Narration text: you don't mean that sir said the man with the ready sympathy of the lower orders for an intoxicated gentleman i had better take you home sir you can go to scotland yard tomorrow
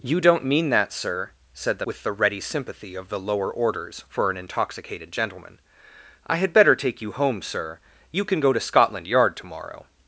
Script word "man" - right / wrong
wrong